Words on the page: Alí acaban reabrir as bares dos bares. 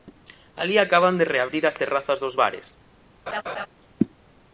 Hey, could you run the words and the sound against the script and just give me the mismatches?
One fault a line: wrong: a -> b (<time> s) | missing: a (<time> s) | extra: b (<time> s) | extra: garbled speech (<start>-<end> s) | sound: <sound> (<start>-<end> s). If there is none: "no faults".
extra: de (1.2 s)
wrong: bares -> terrazas (1.8 s)
sound: laugh (3.3-3.7 s)